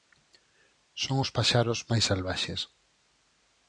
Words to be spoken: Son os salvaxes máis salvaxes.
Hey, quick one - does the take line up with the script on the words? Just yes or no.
no